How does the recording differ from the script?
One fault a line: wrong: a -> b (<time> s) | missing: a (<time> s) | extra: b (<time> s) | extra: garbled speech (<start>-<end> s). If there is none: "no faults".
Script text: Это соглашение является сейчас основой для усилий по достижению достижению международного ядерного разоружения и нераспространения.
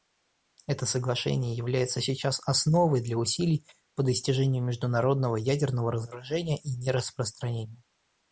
missing: достижению (4.6 s)